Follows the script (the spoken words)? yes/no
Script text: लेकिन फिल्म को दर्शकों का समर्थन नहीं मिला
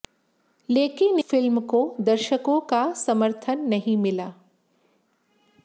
yes